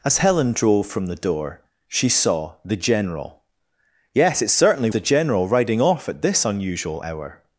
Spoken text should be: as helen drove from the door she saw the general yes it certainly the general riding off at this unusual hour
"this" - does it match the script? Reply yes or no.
yes